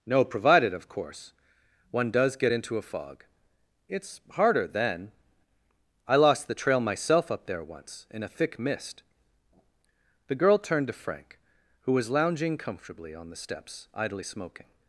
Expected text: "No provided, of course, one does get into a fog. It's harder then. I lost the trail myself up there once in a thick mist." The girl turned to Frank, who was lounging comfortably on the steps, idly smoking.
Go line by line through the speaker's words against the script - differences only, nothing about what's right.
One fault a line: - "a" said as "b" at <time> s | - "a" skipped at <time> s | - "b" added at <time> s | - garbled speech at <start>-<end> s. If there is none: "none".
none